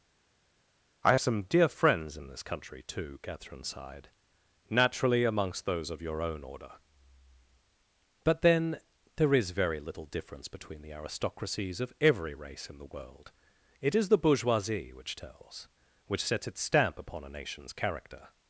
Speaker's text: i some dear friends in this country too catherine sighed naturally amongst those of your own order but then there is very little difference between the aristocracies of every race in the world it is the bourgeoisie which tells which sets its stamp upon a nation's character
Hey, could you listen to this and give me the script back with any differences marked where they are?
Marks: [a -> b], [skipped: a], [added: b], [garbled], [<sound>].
i some dear friends in this country too catherine sighed naturally amongst those of your own order but then there is very little difference between the aristocracies of every race in the world it is the bourgeoisie which tells which sets its stamp upon a nation's character